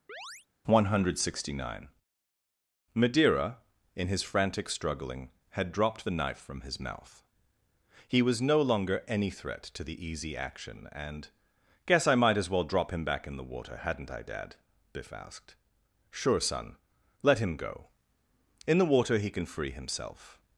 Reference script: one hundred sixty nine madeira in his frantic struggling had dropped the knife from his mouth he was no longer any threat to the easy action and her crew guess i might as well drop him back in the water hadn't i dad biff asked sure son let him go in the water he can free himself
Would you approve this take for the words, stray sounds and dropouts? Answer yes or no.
no